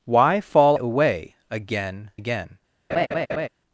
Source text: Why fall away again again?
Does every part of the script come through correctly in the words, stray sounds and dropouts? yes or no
no